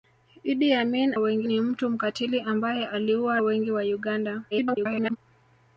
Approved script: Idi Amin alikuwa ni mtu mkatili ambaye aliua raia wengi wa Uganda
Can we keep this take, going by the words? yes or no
no